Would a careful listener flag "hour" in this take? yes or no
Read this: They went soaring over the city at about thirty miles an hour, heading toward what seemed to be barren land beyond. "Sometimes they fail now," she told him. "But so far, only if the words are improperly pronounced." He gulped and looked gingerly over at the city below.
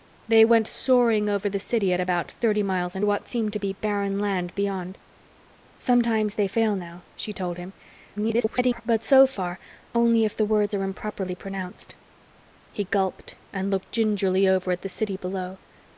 yes